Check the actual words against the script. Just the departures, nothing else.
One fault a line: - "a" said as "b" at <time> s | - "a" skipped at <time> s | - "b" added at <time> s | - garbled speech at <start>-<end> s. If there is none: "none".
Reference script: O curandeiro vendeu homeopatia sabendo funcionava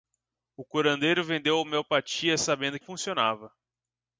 none